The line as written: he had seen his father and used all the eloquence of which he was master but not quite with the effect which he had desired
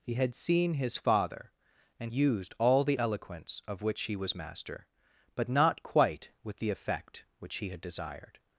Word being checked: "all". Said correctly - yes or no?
yes